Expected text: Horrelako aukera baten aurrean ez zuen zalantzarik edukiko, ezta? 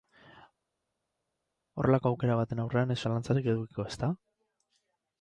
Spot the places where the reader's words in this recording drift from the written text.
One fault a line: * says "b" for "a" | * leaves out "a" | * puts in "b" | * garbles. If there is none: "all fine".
* leaves out "zuen"